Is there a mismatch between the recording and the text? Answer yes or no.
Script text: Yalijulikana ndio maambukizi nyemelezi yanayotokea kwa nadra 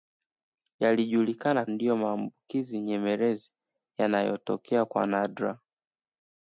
no